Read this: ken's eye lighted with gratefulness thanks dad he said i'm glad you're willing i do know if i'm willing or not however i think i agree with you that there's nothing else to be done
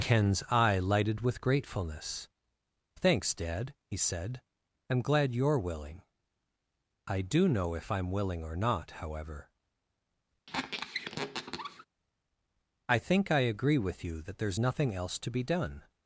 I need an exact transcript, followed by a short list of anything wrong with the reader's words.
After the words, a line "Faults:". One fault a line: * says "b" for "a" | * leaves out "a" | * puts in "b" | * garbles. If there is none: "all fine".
ken's eye lighted with gratefulness thanks dad he said i'm glad you're willing i do know if i'm willing or not however i think i agree with you that there's nothing else to be done
Faults:
all fine